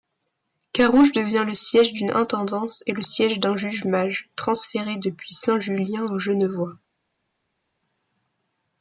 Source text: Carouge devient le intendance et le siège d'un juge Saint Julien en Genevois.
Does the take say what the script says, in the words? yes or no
no